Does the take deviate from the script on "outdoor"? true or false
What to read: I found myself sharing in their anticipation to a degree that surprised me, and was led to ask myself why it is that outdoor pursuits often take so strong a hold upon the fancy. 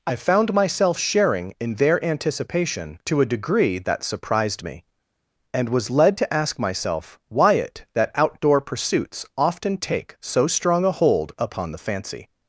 false